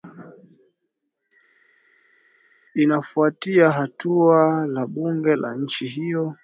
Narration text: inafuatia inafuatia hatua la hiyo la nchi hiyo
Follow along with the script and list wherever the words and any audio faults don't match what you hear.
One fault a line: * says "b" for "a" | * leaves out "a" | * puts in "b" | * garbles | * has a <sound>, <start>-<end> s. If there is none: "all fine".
* leaves out "inafuatia"
* says "bunge" for "hiyo"